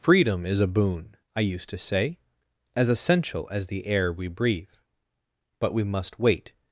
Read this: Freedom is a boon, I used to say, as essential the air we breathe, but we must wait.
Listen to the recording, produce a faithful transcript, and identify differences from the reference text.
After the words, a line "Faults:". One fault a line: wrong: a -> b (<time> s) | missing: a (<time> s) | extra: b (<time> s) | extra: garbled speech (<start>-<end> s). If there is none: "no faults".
Freedom is a boon, I used to say, as essential as the air we breathe, but we must wait.
Faults:
extra: as (3.5 s)